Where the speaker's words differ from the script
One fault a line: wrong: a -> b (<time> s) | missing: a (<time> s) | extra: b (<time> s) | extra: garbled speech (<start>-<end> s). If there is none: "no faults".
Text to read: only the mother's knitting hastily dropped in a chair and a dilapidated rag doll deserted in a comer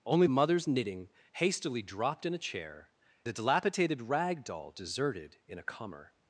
missing: the (0.2 s)
missing: and (2.9 s)